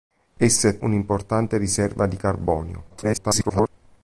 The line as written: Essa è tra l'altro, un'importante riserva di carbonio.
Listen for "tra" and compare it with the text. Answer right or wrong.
wrong